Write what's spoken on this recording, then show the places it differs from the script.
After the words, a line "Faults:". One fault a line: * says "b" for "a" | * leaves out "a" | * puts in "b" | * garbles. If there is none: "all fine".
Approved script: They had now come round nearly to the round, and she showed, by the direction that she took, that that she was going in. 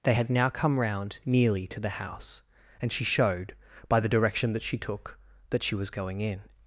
They had now come round nearly to the house, and she showed, by the direction that she took, that she was going in.
Faults:
* says "house" for "round"
* leaves out "that"